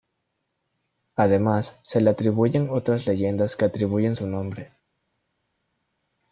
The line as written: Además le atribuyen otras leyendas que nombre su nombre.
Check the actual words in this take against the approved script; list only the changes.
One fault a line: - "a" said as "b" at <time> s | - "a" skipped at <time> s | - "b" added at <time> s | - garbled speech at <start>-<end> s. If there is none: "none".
- "se" added at 1.8 s
- "nombre" said as "atribuyen" at 3.7 s